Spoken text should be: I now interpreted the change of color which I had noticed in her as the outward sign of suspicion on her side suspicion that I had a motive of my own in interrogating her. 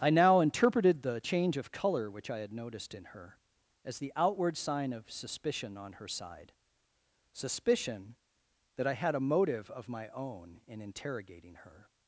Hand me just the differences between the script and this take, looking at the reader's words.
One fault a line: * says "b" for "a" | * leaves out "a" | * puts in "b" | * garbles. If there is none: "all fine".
all fine